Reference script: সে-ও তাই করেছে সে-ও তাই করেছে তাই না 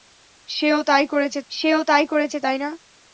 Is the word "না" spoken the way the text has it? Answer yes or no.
yes